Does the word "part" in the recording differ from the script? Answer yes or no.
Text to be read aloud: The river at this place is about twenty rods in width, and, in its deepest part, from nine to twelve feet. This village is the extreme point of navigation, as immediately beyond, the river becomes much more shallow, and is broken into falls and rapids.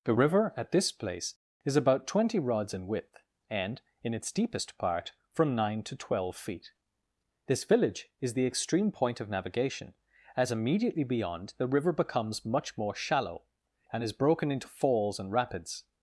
no